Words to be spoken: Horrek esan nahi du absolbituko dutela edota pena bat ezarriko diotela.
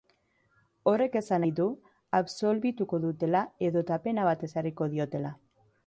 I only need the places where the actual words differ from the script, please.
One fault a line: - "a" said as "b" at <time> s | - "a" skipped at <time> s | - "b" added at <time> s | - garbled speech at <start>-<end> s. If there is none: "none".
none